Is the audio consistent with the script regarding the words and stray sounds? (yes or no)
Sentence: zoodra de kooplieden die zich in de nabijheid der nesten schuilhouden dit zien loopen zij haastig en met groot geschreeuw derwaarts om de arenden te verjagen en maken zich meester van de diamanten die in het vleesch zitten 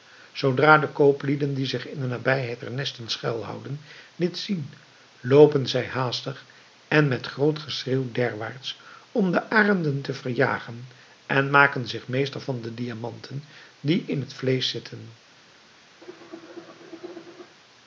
no